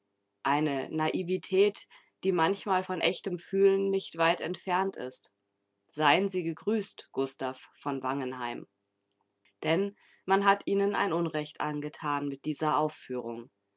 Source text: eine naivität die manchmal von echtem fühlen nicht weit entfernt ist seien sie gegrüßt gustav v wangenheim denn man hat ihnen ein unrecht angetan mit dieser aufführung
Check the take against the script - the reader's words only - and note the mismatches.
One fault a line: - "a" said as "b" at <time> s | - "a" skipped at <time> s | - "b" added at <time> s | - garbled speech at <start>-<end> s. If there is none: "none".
none